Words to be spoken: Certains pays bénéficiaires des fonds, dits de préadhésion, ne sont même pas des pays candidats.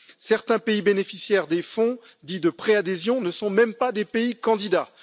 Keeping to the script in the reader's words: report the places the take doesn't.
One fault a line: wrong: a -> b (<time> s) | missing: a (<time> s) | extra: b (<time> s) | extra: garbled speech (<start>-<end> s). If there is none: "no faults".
no faults